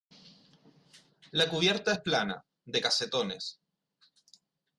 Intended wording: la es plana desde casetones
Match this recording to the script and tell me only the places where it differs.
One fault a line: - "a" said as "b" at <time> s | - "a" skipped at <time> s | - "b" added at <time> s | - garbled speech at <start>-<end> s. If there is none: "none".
- "cubierta" added at 1.5 s
- "desde" said as "de" at 2.7 s